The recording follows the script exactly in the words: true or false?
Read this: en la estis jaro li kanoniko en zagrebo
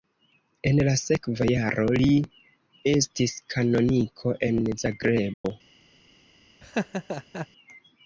false